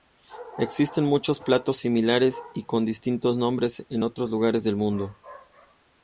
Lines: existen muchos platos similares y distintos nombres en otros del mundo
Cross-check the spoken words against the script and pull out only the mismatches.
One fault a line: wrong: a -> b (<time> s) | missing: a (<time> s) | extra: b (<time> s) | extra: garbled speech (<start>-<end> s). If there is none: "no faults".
extra: con (2.6 s)
extra: lugares (4.3 s)